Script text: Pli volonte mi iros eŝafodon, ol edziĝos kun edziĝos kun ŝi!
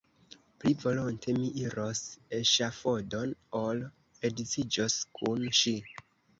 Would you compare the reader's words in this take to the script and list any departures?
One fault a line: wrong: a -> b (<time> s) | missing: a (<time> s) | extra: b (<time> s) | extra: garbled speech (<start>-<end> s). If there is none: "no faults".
missing: edziĝos kun (5.5 s)